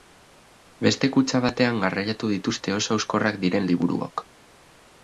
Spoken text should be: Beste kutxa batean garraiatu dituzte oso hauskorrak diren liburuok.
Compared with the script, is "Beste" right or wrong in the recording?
right